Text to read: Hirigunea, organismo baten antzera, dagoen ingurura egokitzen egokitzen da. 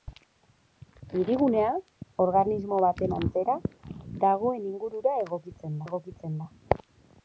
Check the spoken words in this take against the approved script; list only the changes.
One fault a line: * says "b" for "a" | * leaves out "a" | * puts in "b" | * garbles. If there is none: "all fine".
all fine